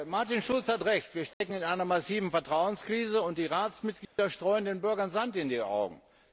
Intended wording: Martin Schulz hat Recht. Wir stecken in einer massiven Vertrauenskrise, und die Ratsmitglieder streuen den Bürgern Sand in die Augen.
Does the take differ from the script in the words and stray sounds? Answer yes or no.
yes